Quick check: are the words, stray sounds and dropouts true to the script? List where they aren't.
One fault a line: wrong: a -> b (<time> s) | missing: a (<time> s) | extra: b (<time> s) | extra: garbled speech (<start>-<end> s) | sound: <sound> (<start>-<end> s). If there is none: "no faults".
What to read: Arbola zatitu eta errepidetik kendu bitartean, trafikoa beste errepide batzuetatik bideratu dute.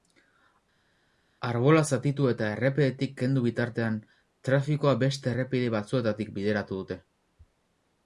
no faults